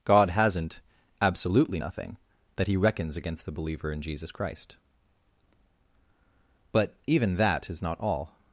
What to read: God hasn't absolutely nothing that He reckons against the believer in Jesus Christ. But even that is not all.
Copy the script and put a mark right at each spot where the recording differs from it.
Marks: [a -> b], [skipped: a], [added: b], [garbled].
God hasn't absolutely nothing that He reckons against the believer in Jesus Christ. But even that is not all.